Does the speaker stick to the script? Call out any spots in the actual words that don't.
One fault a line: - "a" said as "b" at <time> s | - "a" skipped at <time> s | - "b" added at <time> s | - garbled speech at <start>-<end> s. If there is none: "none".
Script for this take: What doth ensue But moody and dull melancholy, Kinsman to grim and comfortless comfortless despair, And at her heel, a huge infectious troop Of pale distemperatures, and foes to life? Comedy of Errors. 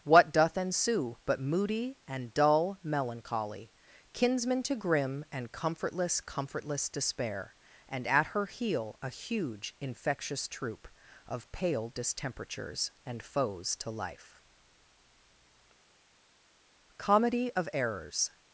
none